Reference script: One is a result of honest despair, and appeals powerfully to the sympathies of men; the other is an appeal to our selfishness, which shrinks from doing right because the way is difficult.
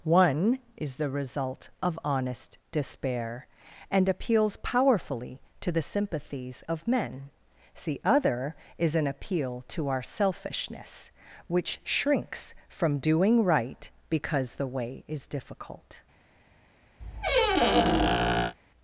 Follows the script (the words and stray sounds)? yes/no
no